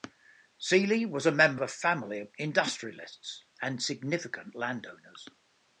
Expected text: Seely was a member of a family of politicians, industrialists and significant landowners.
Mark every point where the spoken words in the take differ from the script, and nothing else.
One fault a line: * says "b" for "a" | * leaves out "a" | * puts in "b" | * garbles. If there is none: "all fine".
* leaves out "of"
* leaves out "politicians"